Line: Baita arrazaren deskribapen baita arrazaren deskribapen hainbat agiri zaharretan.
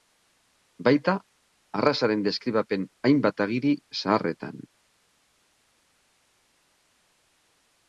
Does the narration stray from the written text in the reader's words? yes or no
yes